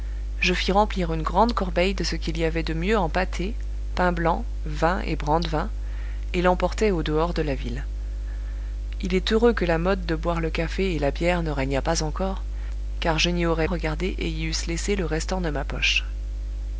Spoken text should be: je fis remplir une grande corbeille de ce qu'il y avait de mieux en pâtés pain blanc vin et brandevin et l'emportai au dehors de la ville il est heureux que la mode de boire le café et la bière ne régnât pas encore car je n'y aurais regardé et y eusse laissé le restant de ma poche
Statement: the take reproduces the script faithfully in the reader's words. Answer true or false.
true